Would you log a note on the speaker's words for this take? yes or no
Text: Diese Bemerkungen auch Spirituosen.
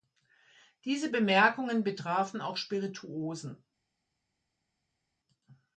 yes